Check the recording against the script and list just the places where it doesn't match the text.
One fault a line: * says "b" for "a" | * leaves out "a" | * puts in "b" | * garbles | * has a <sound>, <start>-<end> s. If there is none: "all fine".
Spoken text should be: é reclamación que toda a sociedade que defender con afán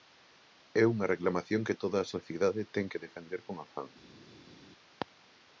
* puts in "unha"
* puts in "ten"